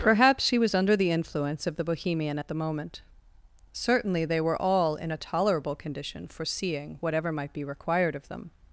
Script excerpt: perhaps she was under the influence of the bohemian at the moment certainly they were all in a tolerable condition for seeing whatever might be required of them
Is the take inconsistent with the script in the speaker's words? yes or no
no